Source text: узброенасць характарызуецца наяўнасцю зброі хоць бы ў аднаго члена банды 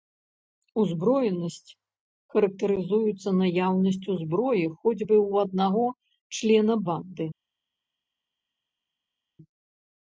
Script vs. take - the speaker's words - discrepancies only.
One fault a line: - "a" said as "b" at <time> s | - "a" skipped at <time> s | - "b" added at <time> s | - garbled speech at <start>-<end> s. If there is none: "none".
none